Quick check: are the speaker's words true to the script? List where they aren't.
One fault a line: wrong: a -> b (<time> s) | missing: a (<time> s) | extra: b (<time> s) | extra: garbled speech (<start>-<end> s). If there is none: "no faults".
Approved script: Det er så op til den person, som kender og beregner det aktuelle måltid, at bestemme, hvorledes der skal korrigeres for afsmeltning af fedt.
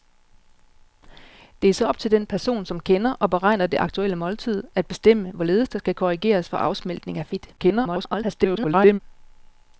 extra: garbled speech (7.6-9.0 s)